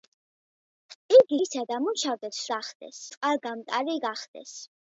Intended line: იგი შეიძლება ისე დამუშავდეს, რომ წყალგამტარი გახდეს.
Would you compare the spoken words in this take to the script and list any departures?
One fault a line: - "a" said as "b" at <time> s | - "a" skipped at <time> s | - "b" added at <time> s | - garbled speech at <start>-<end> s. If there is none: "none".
- "შეიძლება" skipped at 1.4 s
- "რომ" said as "გახდეს" at 2.5 s